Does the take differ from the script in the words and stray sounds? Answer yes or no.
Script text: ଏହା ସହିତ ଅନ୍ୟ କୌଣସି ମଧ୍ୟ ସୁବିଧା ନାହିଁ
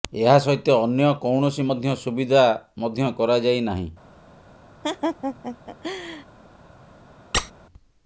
yes